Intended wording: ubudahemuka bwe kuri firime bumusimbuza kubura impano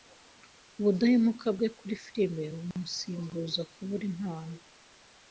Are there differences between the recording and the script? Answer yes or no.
no